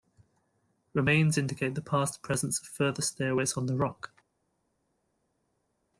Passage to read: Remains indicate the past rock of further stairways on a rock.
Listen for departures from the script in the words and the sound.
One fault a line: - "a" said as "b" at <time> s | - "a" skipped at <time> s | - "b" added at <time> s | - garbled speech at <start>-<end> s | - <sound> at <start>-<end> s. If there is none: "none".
- "rock" said as "presence" at 2.2 s
- "a" said as "the" at 3.7 s